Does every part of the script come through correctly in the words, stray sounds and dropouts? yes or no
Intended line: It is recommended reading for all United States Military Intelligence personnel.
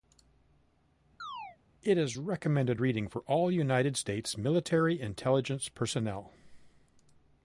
no